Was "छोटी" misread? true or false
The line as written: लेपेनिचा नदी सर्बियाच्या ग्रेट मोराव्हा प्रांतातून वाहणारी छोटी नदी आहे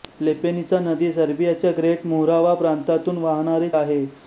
true